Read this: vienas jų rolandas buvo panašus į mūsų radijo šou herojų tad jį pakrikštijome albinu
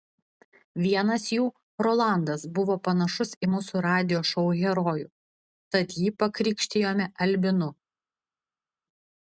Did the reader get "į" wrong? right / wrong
right